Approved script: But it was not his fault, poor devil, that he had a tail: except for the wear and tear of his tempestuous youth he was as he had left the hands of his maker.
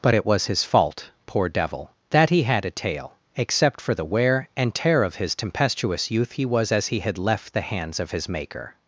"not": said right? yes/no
no